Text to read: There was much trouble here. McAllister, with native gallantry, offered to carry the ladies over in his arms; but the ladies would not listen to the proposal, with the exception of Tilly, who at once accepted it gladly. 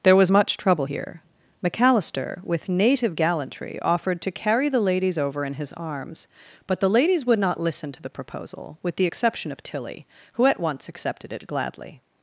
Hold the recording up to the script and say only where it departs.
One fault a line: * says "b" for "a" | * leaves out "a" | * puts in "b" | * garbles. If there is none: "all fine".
all fine